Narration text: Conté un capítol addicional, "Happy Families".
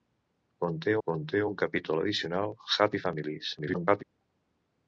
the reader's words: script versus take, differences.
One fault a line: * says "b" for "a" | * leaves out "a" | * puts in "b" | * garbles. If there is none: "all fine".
* puts in "conté"
* garbles